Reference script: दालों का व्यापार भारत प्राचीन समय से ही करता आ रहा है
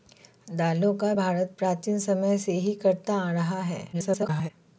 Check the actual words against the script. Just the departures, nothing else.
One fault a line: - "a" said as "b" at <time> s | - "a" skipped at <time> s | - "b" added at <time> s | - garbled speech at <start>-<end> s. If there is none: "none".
- "व्यापार" skipped at 1.1 s
- garbled speech at 3.9-4.5 s